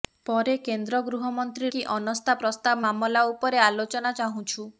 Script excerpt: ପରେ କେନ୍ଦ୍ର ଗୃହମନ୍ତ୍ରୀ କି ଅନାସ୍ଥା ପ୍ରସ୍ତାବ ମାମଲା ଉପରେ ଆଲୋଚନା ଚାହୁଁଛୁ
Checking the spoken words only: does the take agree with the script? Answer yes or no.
yes